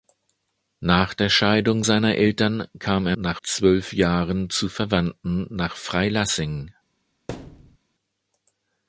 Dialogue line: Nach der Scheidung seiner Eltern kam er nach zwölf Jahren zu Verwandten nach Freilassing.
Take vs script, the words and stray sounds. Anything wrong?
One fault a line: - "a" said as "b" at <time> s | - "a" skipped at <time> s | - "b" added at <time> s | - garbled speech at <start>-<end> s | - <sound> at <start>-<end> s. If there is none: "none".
- thud at 7.3-7.8 s